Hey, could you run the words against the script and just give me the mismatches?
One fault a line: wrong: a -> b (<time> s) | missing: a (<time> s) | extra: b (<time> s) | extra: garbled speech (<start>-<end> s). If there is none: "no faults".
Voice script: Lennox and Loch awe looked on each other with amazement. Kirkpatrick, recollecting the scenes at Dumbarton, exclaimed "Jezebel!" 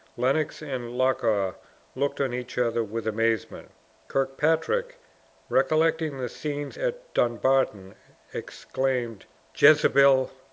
no faults